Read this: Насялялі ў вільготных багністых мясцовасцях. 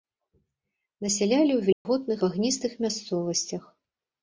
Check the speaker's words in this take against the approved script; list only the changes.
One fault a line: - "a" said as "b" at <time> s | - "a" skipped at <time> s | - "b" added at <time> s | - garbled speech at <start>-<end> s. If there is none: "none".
none